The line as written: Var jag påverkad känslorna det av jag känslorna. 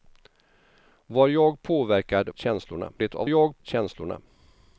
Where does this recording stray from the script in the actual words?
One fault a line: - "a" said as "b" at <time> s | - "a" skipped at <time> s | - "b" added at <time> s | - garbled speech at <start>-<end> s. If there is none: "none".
none